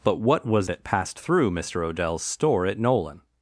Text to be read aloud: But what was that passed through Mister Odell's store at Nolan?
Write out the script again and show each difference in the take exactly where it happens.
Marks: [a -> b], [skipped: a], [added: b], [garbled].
But what was that passed through Mister Odell's store at Nolan?